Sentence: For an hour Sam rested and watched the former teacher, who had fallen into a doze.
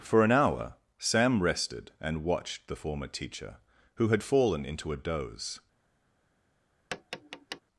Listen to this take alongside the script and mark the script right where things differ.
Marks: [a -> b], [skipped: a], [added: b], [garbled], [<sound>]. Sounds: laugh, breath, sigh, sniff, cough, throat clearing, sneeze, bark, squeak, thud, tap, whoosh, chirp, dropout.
For an hour Sam rested and watched the former teacher, who had fallen into a doze. [tap]